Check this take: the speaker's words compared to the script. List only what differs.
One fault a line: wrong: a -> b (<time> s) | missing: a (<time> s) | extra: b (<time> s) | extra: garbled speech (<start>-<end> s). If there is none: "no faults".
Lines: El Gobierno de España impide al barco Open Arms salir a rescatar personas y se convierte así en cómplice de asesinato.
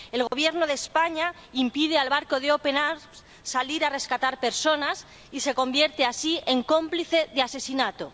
extra: de (2.4 s)